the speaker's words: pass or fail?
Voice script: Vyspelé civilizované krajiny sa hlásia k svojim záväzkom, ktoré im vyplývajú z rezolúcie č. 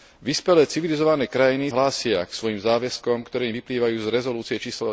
fail